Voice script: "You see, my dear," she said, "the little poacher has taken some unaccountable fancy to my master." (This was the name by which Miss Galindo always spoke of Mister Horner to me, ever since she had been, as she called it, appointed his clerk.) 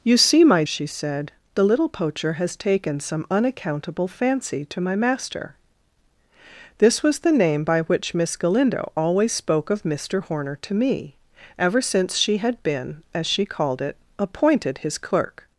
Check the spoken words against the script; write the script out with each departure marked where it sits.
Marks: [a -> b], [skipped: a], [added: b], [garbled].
"You see, my [skipped: dear,"] she said, "the little poacher has taken some unaccountable fancy to my master." (This was the name by which Miss Galindo always spoke of Mister Horner to me, ever since she had been, as she called it, appointed his clerk.)